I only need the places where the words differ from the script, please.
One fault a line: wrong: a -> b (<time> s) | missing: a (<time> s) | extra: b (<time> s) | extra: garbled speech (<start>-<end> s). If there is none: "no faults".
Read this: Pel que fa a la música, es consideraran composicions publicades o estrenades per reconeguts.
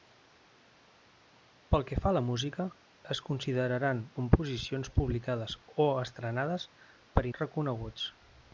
no faults